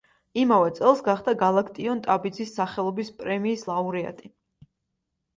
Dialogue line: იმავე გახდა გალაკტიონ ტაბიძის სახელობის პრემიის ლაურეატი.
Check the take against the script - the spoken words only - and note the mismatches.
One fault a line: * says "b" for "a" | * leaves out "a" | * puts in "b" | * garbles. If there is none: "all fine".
* puts in "წელს"